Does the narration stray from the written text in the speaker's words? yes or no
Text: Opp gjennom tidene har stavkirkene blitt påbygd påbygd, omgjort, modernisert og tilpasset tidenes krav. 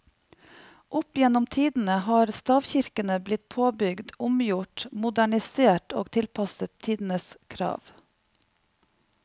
yes